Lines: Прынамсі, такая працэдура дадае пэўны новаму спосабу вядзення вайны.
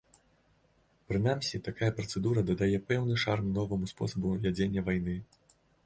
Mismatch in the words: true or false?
true